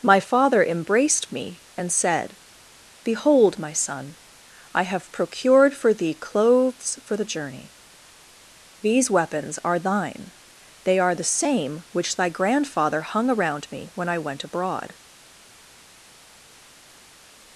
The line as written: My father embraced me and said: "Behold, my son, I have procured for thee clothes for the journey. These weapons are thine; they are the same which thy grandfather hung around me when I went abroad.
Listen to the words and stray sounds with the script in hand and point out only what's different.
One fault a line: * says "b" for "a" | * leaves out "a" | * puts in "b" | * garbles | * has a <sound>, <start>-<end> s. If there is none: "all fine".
all fine